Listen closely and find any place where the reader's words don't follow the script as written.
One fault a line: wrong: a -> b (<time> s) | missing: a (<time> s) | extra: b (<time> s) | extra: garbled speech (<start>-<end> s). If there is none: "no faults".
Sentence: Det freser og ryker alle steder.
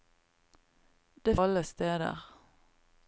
missing: freser og ryker (1.4 s)